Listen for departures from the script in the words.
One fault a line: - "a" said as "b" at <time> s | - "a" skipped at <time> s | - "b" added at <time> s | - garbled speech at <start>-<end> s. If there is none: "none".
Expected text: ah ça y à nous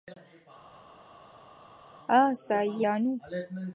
none